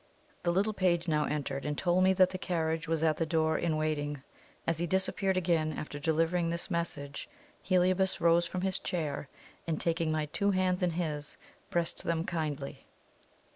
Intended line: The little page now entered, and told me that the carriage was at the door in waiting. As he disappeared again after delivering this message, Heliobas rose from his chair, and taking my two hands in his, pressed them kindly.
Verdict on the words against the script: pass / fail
pass